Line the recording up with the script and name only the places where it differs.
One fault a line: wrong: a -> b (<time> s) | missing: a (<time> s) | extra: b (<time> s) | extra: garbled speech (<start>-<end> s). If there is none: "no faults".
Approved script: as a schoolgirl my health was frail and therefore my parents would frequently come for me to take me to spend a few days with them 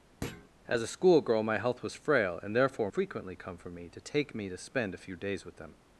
missing: my parents would (2.9 s)